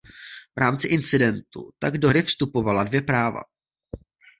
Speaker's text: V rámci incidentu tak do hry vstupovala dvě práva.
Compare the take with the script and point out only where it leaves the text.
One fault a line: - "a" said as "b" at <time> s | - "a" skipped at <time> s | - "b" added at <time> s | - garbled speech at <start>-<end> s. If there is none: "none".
none